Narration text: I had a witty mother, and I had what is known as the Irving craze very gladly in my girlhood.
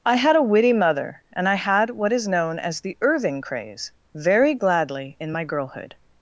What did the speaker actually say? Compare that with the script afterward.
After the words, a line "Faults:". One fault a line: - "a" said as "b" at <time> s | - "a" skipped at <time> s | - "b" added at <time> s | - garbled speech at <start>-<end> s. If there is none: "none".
I had a witty mother, and I had what is known as the Irving craze very gladly in my girlhood.
Faults:
none